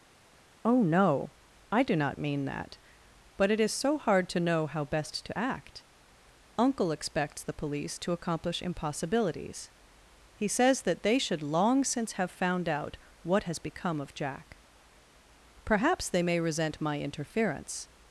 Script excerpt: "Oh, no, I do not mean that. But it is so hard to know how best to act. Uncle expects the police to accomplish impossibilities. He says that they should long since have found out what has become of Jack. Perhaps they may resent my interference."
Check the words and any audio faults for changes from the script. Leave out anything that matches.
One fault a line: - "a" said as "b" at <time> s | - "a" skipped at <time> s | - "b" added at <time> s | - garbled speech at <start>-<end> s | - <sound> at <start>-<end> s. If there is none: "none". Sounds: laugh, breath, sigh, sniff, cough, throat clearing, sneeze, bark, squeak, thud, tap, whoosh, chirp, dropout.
none